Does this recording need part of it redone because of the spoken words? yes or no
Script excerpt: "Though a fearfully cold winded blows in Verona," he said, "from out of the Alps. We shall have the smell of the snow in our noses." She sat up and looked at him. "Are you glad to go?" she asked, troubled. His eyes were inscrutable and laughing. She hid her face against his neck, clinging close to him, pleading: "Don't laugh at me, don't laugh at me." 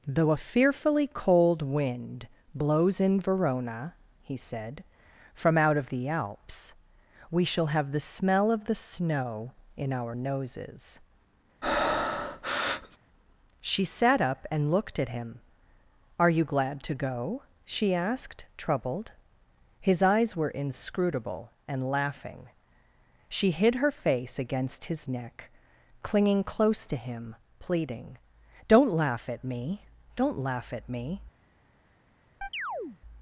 yes